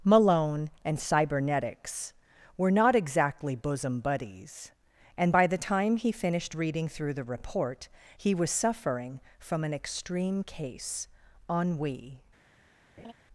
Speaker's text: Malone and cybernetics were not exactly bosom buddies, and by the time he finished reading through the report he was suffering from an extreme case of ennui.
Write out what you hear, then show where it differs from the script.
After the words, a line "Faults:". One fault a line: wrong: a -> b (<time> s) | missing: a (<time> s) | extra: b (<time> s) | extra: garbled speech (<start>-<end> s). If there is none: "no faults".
Malone and cybernetics were not exactly bosom buddies, and by the time he finished reading through the report he was suffering from an extreme case ennui.
Faults:
missing: of (11.1 s)